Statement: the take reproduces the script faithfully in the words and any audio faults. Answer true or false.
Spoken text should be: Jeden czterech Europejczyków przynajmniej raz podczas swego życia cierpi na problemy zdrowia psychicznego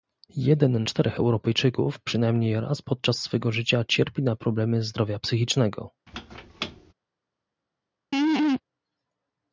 false